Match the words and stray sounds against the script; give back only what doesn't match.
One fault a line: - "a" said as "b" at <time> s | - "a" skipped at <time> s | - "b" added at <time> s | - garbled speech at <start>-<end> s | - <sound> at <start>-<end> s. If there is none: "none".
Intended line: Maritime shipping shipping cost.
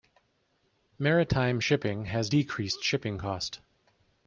- "has decreased" added at 2.1 s